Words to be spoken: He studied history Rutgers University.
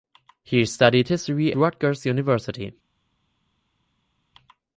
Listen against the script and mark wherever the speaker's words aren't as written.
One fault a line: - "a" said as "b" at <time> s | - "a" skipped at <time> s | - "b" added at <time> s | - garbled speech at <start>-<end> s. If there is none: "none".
none